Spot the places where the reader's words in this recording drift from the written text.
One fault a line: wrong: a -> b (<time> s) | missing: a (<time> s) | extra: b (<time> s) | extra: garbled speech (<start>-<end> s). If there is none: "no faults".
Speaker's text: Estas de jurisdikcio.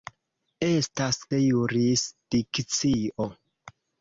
no faults